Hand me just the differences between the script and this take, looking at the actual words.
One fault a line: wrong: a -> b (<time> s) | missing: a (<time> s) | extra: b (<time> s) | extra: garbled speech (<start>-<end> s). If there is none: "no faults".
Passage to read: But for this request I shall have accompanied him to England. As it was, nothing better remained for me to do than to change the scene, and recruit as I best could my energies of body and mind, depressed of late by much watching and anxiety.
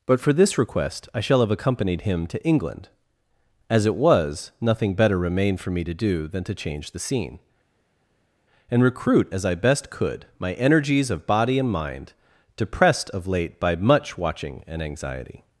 no faults